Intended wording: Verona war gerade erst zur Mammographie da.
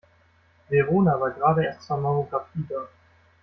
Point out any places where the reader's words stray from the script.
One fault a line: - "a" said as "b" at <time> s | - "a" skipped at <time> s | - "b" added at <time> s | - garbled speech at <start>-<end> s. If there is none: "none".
none